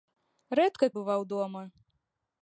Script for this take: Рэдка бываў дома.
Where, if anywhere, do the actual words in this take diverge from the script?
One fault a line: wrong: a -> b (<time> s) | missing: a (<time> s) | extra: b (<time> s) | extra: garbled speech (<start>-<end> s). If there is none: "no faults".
no faults